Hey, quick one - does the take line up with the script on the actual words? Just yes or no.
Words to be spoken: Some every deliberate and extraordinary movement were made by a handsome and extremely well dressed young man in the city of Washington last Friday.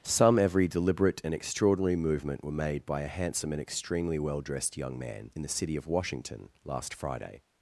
yes